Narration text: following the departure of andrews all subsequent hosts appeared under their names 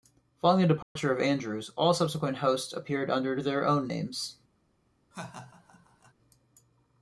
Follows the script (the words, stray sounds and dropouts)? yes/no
no